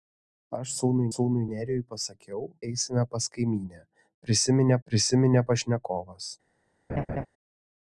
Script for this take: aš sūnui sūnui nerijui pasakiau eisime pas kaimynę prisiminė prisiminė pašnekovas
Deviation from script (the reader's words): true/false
false